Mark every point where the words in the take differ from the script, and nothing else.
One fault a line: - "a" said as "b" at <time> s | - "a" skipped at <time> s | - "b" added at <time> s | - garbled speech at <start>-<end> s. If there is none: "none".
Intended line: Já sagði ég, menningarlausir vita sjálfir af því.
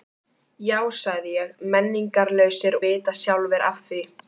none